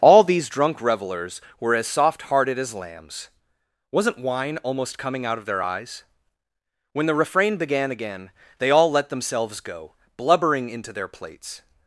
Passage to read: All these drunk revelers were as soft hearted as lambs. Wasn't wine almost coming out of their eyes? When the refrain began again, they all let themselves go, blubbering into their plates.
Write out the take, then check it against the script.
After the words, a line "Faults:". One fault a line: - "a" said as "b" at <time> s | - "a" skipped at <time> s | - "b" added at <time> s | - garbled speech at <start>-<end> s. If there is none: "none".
All these drunk revelers were as soft hearted as lambs. Wasn't wine almost coming out of their eyes? When the refrain began again, they all let themselves go, blubbering into their plates.
Faults:
none